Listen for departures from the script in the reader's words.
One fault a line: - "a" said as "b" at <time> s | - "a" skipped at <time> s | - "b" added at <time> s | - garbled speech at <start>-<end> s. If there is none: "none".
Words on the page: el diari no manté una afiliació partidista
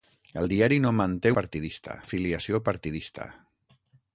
- "una" said as "partidista" at 1.4 s